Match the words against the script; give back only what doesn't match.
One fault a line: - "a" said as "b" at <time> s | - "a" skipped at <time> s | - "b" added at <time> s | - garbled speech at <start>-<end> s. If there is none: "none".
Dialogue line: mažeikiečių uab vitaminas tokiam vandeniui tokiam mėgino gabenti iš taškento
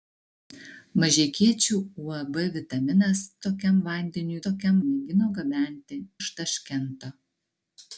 none